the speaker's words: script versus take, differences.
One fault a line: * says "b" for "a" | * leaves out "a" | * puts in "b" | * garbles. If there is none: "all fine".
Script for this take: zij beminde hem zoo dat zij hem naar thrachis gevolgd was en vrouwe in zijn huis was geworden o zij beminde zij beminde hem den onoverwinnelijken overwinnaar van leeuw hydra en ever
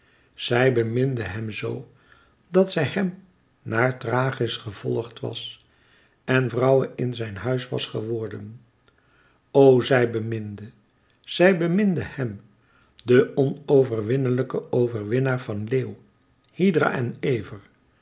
all fine